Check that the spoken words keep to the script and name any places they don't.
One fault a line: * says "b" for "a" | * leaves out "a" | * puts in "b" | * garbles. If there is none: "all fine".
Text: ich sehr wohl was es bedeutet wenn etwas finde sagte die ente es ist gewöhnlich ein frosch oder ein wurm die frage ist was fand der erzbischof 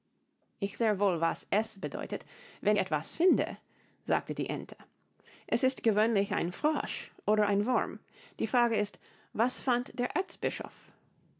all fine